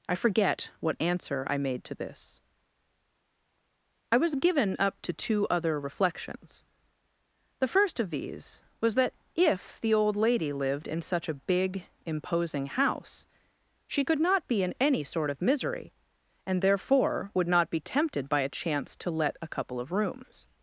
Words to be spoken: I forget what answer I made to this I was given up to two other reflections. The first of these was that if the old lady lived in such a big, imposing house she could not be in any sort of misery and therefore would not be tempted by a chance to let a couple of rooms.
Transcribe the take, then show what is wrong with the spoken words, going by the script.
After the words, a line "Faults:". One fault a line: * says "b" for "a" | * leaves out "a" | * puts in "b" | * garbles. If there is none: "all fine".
I forget what answer I made to this I was given up to two other reflections. The first of these was that if the old lady lived in such a big, imposing house she could not be in any sort of misery and therefore would not be tempted by a chance to let a couple of rooms.
Faults:
all fine